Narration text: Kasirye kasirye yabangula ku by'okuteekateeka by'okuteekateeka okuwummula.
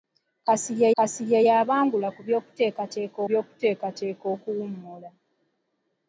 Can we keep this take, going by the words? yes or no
yes